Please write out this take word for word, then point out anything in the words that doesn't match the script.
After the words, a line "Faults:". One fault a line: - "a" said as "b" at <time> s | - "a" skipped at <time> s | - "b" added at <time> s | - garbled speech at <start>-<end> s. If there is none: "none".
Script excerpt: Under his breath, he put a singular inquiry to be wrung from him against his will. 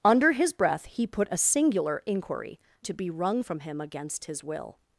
Under his breath, he put a singular inquiry to be wrung from him against his will.
Faults:
none